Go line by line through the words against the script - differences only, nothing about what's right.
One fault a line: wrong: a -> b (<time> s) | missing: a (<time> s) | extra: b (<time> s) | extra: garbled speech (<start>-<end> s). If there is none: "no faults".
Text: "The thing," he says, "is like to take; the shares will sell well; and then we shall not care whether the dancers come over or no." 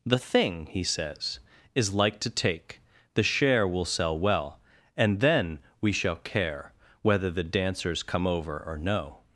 wrong: shares -> share (3.2 s)
missing: not (6.2 s)